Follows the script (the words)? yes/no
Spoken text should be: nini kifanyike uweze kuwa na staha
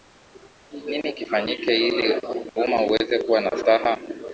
no